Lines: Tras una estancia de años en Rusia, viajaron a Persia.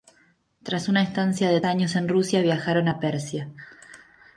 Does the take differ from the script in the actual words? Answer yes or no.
no